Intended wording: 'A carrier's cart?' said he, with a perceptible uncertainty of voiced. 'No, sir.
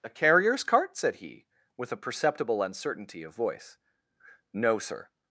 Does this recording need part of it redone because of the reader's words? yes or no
yes